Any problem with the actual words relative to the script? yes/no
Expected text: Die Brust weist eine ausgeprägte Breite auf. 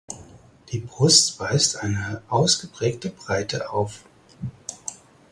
no